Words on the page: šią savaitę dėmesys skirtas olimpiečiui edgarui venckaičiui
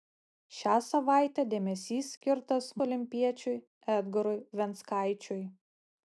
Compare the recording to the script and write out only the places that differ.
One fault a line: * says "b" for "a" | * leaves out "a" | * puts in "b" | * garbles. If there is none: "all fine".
all fine